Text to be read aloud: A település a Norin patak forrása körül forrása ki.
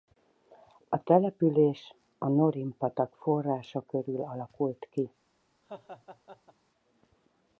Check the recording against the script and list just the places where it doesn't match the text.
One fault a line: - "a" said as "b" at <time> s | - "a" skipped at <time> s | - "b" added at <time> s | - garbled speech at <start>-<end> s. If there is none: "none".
- "forrása" said as "alakult" at 4.2 s